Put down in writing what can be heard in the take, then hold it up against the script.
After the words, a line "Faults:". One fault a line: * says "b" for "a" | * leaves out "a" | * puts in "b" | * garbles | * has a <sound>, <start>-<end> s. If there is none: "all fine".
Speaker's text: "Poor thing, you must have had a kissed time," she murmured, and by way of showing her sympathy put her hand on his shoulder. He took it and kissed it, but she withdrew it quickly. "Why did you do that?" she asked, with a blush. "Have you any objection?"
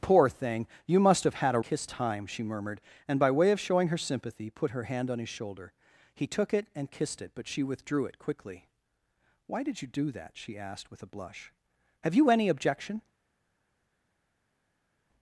"Poor thing, you must have had a kissed time," she murmured, and by way of showing her sympathy put her hand on his shoulder. He took it and kissed it, but she withdrew it quickly. "Why did you do that?" she asked, with a blush. "Have you any objection?"
Faults:
all fine